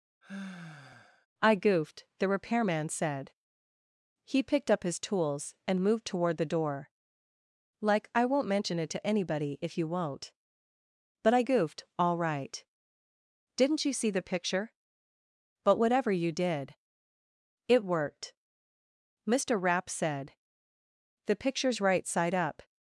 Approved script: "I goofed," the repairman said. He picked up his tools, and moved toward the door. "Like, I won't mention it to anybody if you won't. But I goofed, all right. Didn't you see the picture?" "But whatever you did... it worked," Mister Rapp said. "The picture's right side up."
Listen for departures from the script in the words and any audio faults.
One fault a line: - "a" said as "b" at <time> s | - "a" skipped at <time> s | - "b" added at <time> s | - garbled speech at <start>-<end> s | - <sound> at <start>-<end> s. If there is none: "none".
- sigh at 0.2-1.3 s